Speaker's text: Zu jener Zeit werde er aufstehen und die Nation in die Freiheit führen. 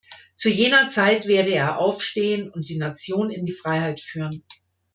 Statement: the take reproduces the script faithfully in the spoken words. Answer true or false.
true